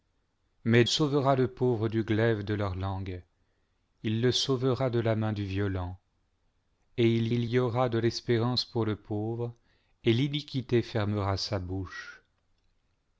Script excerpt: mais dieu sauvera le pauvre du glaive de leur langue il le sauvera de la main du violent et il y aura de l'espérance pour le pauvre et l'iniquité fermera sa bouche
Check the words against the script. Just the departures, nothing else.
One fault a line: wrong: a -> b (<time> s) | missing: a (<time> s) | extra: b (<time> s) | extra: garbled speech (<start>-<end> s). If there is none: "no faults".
missing: dieu (0.8 s)
extra: il (7.3 s)